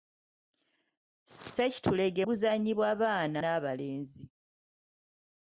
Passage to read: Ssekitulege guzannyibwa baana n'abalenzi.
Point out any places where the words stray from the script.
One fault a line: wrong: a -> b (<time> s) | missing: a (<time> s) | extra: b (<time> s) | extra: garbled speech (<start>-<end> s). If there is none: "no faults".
no faults